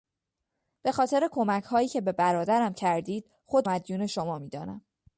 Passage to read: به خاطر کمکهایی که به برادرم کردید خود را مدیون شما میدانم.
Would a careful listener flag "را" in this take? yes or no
yes